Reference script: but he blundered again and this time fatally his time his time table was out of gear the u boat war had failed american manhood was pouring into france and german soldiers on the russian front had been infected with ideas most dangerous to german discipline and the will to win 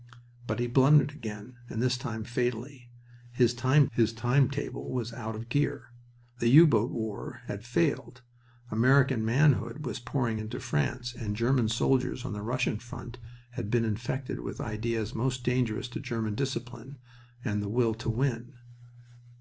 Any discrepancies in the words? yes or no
no